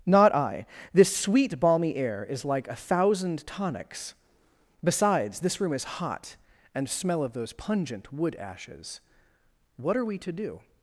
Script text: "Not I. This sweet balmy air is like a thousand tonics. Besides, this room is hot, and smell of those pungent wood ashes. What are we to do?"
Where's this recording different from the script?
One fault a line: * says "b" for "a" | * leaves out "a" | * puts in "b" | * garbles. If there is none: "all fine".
all fine